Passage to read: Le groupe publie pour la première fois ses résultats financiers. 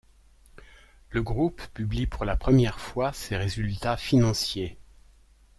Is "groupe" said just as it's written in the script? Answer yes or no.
yes